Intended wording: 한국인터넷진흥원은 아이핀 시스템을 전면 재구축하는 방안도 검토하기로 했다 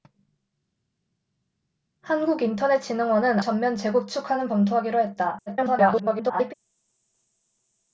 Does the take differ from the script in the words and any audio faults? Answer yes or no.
yes